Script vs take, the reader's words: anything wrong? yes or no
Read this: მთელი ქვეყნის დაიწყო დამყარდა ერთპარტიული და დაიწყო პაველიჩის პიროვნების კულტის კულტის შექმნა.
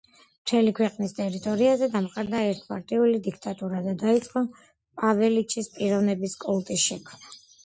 yes